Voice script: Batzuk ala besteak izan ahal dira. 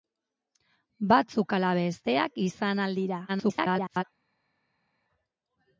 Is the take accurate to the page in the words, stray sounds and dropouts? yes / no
no